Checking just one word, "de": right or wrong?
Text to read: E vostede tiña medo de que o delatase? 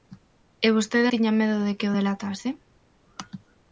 right